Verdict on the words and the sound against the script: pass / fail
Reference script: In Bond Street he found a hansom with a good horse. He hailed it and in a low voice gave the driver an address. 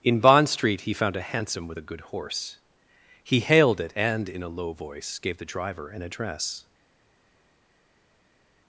pass